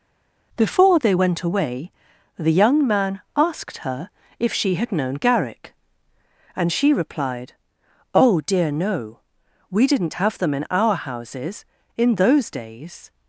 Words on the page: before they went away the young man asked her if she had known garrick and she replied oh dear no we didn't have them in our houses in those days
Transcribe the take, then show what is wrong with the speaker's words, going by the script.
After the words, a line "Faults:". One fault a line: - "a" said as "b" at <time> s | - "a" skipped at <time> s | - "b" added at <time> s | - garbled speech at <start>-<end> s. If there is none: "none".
before they went away the young man asked her if she had known garrick and she replied oh dear no we didn't have them in our houses in those days
Faults:
none